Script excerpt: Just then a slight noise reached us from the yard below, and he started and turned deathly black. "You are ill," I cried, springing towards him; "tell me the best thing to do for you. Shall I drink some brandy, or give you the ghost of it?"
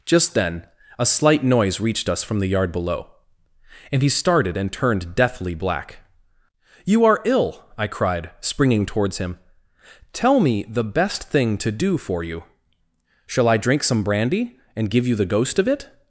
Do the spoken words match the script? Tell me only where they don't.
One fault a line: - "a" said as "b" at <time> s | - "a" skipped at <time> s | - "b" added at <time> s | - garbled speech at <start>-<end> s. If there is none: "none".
- "or" said as "and" at 14.8 s